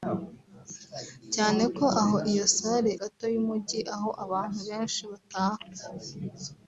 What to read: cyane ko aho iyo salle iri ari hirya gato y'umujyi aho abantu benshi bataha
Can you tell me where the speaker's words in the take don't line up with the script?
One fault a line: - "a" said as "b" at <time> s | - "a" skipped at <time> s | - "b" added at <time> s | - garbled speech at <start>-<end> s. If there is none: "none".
- "iri ari hirya" skipped at 2.9 s